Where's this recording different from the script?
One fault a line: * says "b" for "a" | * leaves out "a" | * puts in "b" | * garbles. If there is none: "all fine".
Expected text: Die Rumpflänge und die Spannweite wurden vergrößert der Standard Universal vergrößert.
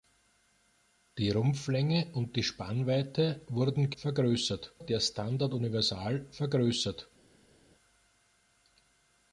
all fine